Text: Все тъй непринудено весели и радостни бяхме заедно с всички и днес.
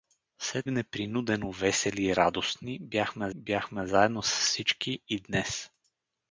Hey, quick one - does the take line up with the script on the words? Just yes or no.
no